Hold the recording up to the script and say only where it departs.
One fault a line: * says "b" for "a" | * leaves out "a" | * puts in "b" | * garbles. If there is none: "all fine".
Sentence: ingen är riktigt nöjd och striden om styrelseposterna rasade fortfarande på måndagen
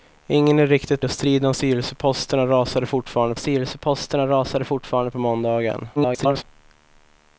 * leaves out "nöjd"
* puts in "styrelseposterna rasade fortfarande"
* garbles